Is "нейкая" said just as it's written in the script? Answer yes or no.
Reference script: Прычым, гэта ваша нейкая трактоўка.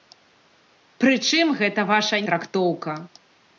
no